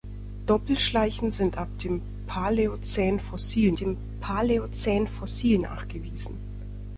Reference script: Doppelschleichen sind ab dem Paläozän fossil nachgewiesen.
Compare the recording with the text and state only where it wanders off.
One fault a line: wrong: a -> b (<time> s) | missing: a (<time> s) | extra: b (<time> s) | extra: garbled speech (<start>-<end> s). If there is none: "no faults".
extra: dem Paläozän fossil (3.8 s)